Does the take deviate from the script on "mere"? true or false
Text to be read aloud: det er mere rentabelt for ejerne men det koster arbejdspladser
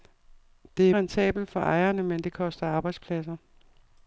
true